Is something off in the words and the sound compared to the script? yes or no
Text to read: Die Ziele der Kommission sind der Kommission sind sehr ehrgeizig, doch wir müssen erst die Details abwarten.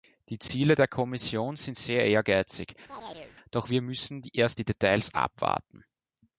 yes